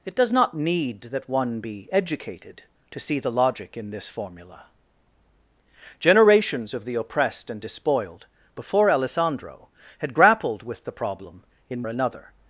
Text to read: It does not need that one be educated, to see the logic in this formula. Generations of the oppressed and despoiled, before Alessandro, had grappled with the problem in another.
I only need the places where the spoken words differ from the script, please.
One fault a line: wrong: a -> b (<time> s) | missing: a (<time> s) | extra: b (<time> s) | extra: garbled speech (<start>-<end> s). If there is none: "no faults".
no faults